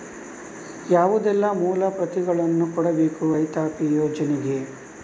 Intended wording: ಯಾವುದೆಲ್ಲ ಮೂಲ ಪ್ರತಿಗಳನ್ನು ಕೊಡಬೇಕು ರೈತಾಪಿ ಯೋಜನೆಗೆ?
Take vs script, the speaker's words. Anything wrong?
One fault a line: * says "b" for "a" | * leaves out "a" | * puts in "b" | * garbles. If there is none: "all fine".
all fine